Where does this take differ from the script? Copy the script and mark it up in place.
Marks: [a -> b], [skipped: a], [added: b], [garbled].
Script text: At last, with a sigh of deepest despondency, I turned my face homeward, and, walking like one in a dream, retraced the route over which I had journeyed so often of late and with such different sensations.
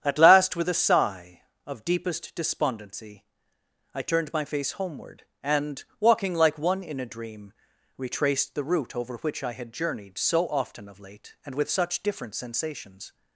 At last, with a sigh of deepest despondency, I turned my face homeward, and, walking like one in a dream, retraced the route over which I had journeyed so often of late and with such different sensations.